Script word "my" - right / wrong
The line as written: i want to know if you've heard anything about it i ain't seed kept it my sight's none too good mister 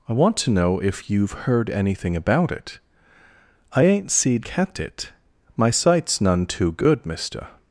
right